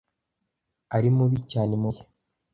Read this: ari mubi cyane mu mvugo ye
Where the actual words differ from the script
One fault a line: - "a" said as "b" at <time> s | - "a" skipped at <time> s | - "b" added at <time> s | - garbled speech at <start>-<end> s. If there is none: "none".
- "mvugo" skipped at 1.9 s